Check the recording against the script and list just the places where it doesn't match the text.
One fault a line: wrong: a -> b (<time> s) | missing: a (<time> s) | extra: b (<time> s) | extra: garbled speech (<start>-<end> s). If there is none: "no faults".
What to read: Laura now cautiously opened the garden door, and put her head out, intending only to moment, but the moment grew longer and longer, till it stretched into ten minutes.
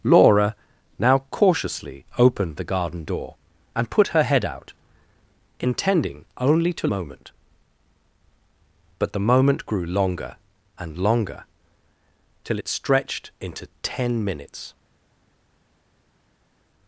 no faults